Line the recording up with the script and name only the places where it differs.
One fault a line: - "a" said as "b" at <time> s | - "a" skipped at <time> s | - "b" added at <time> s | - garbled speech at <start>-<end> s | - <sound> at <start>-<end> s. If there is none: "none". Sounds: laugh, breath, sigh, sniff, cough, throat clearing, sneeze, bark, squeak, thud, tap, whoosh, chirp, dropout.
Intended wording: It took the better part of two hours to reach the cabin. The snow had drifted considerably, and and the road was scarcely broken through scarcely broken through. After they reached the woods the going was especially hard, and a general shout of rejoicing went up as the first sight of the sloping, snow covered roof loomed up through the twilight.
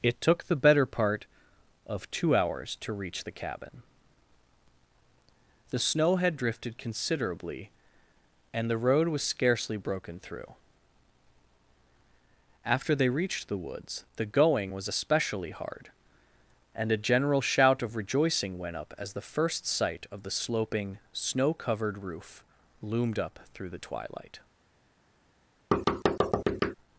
- "and" skipped at 8.7 s
- "scarcely broken through" skipped at 10.6 s
- thud at 25.7-26.8 s